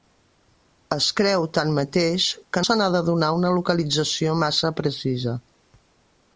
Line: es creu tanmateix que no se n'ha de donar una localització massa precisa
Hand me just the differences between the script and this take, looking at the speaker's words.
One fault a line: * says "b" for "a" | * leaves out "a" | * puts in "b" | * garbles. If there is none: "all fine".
* leaves out "no"